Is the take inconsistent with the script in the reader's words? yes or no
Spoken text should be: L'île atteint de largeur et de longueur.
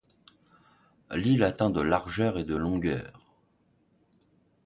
no